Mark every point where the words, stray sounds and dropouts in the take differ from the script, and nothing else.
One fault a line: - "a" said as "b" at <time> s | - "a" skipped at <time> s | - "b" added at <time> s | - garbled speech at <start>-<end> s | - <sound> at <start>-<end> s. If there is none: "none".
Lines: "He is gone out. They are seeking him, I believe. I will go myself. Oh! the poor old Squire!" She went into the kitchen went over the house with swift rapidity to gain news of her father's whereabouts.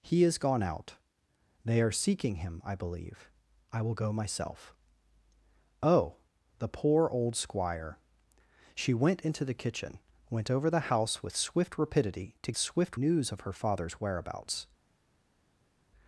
- "gain" said as "swift" at 12.6 s